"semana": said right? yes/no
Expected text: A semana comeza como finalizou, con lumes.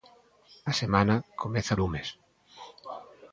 yes